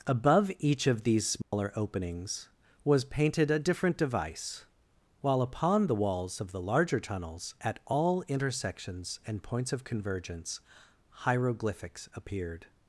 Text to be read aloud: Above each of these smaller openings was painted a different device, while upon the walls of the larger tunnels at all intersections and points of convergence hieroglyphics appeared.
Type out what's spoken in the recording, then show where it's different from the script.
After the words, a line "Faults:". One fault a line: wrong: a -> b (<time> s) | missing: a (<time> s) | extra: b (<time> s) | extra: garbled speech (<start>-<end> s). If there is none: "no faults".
Above each of these smaller openings was painted a different device, while upon the walls of the larger tunnels at all intersections and points of convergence hieroglyphics appeared.
Faults:
no faults